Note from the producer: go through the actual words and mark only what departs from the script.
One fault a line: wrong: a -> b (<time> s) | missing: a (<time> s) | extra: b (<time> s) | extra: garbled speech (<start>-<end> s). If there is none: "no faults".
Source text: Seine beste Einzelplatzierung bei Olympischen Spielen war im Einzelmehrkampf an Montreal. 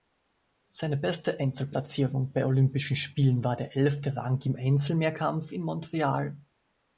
extra: der elfte Rang (3.5 s)
wrong: an -> in (5.5 s)